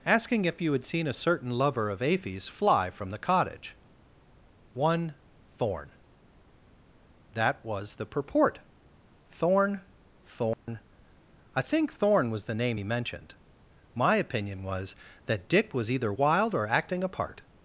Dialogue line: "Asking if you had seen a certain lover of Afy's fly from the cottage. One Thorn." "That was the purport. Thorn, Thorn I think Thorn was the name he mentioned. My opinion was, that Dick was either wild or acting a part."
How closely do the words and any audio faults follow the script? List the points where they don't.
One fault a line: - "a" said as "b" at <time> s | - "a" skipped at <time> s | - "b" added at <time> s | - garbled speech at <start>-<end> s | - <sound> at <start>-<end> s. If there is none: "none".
- dropout at 10.5-10.7 s